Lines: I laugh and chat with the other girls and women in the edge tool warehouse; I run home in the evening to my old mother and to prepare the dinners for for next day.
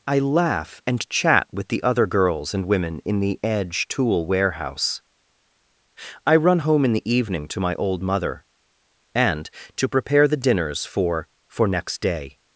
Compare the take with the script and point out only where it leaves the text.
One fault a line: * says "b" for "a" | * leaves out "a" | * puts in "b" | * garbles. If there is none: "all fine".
all fine